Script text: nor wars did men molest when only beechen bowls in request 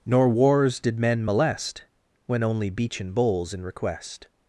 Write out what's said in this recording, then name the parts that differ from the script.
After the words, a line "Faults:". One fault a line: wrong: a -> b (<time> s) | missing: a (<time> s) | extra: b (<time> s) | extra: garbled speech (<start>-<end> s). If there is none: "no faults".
nor wars did men molest when only beechen bowls in request
Faults:
no faults